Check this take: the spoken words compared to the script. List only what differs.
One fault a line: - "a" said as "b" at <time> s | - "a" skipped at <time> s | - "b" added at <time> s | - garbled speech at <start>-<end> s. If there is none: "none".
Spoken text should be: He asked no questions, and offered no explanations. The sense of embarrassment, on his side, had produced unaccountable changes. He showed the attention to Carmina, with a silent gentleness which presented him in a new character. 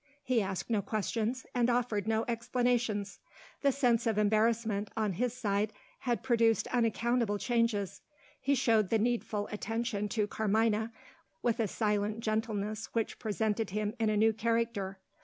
- "needful" added at 9.0 s